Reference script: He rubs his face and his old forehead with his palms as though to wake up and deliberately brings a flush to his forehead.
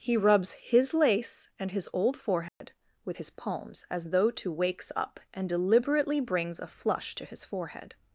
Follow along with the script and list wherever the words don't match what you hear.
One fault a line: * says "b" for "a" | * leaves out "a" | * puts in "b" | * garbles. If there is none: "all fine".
* says "lace" for "face"
* says "wakes" for "wake"